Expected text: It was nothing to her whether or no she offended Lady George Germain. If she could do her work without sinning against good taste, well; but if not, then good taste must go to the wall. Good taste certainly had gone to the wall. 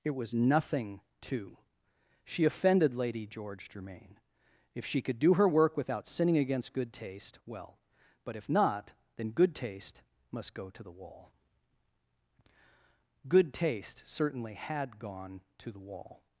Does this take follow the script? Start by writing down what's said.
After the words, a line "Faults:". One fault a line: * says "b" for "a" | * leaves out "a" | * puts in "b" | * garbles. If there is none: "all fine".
It was nothing to she offended Lady George Germain. If she could do her work without sinning against good taste, well; but if not, then good taste must go to the wall. Good taste certainly had gone to the wall.
Faults:
* leaves out "her whether or no"